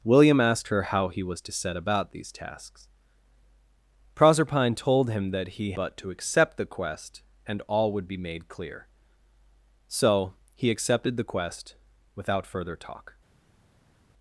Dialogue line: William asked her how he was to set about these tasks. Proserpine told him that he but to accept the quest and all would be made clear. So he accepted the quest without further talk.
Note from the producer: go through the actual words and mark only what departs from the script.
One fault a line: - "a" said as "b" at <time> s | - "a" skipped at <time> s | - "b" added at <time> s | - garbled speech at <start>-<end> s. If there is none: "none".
none